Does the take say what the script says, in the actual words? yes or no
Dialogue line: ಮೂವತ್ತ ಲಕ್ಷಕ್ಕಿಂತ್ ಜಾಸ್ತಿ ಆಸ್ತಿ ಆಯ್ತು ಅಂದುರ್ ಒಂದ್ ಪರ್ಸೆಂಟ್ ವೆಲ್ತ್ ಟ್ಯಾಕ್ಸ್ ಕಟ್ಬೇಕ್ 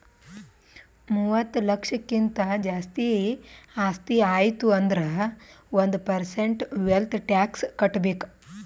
yes